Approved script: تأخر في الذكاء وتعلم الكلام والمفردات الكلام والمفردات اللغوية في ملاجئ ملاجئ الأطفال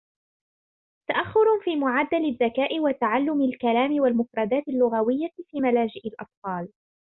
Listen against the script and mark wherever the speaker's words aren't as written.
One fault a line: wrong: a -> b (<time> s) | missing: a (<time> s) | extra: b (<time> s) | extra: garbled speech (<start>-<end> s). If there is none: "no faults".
extra: معدل (1.8 s)
missing: الكلام والمفردات (4.6 s)
missing: ملاجئ (6.1 s)